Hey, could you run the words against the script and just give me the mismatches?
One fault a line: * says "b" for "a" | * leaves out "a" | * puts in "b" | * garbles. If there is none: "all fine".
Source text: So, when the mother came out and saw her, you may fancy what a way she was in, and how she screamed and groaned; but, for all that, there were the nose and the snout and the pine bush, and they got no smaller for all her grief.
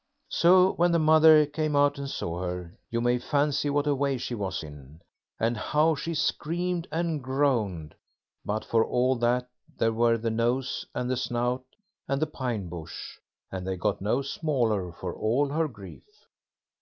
all fine